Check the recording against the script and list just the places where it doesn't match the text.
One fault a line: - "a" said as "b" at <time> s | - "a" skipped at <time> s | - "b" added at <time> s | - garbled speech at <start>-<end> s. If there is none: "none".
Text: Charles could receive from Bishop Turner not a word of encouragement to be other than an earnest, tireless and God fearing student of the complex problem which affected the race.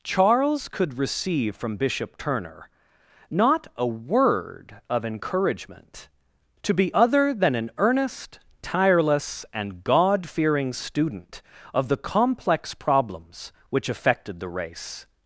- "problem" said as "problems" at 12.7 s